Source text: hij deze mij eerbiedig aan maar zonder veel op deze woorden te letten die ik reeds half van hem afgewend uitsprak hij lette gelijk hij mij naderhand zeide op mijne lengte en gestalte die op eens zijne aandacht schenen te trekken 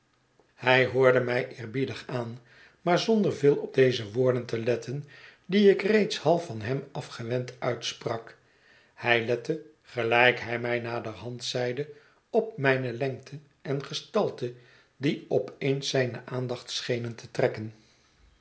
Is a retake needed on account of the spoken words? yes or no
yes